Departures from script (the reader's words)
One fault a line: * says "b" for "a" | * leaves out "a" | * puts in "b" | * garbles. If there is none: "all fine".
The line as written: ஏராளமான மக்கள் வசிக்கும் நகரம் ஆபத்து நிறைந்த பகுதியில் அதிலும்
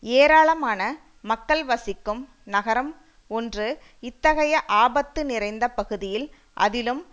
* puts in "ஒன்று இத்தகைய"